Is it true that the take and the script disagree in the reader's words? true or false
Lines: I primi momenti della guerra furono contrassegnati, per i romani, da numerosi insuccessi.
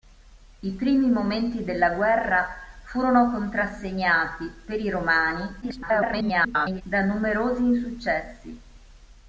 true